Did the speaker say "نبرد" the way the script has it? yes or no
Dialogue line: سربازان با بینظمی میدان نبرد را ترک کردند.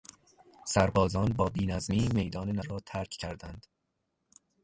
no